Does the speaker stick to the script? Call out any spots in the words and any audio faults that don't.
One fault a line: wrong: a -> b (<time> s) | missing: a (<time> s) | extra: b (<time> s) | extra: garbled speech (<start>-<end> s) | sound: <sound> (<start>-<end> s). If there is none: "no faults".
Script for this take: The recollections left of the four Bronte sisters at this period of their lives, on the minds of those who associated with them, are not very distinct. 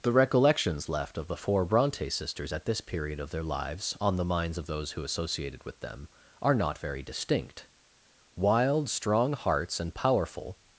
extra: Wild strong hearts and powerful (8.3 s)